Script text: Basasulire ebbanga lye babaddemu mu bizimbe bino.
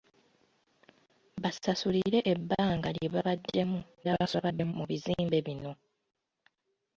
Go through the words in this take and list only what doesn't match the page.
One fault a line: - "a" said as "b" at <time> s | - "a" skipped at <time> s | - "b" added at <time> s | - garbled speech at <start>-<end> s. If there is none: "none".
- garbled speech at 4.0-4.7 s